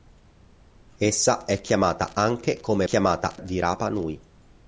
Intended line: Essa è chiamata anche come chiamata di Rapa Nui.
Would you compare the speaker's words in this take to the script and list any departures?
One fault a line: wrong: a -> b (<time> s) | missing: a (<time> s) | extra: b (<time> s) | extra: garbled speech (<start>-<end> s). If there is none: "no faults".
no faults